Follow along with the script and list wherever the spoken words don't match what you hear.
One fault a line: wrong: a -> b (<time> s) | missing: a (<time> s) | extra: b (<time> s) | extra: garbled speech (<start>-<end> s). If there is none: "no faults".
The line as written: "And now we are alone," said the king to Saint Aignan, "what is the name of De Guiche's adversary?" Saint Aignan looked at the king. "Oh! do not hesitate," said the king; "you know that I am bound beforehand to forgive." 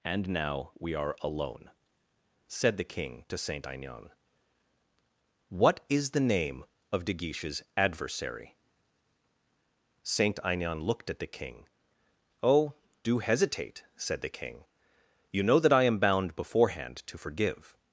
missing: not (13.2 s)